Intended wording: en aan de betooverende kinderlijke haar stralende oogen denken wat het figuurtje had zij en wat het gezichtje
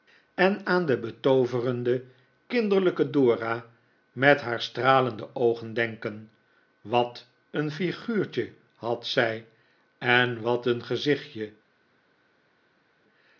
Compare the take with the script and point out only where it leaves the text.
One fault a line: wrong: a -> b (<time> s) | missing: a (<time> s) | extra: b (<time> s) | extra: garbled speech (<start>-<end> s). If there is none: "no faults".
extra: dora met (3.1 s)
wrong: het -> een (7.5 s)
wrong: het -> een (10.7 s)